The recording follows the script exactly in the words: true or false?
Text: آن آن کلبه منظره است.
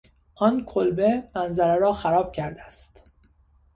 false